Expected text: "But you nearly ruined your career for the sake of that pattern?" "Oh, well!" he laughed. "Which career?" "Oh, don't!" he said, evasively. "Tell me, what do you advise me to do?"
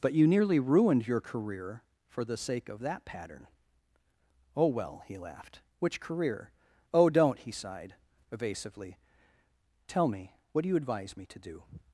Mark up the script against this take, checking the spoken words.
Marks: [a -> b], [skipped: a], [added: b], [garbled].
"But you nearly ruined your career for the sake of that pattern?" "Oh, well!" he laughed. "Which career?" "Oh, don't!" he [said, -> sighed] evasively. "Tell me, what do you advise me to do?"